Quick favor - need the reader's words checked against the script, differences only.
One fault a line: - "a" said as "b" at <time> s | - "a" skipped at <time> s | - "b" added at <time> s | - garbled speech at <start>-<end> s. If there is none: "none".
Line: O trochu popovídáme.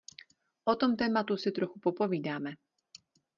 - "tom tématu si" added at 0.8 s